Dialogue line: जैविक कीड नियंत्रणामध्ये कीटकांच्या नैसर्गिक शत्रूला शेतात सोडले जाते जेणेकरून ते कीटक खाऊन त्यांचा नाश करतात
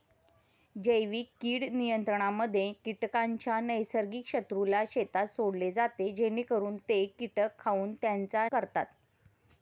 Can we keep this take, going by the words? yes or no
no